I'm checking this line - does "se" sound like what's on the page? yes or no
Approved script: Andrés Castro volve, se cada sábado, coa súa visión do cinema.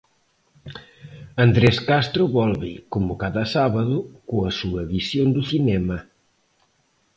no